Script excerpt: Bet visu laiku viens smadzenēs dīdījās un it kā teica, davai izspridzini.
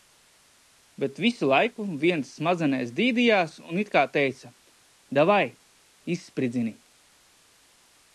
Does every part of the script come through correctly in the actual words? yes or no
yes